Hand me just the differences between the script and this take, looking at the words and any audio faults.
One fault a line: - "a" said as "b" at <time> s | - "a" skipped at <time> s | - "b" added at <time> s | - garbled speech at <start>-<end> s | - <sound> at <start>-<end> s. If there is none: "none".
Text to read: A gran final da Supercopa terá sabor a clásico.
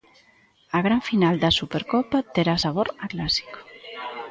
none